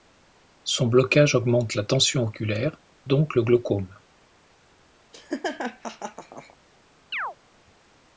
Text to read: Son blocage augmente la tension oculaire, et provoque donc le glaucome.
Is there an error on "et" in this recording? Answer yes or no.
yes